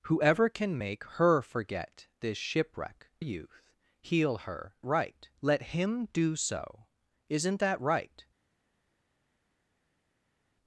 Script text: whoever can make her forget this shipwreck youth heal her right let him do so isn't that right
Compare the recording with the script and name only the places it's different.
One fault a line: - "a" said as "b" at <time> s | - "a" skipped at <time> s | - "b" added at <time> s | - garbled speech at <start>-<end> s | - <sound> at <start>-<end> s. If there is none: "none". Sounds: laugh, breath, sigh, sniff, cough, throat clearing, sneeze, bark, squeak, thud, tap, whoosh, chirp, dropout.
none